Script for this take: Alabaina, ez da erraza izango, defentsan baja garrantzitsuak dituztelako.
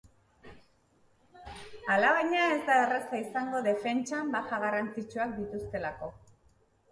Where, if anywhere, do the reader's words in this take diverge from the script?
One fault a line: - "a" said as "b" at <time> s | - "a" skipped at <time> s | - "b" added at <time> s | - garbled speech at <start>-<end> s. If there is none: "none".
none